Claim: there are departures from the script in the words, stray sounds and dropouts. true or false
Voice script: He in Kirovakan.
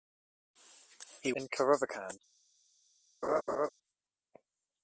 true